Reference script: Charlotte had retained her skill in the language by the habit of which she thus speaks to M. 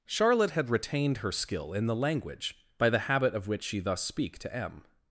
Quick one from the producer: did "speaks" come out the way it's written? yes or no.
no